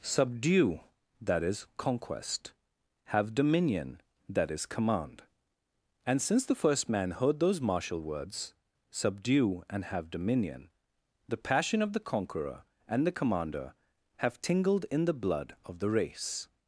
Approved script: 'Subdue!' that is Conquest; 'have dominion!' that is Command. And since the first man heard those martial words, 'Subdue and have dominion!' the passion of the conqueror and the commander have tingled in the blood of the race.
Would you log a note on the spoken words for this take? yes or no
no